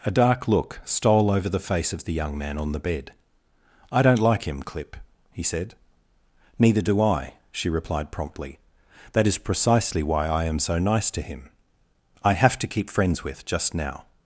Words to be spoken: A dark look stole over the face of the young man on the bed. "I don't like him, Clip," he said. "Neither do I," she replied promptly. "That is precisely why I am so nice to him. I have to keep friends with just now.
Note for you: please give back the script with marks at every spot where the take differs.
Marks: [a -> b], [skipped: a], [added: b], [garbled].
A dark look stole over the face of the young man on the bed. "I don't like him, Clip," he said. "Neither do I," she replied promptly. "That is precisely why I am so nice to him. I have to keep friends with just now.